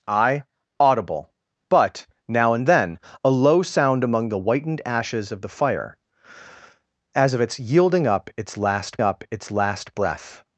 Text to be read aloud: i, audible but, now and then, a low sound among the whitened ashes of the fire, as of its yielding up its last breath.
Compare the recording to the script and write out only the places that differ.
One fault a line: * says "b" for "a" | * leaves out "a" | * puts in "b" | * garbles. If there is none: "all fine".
* puts in "up its last"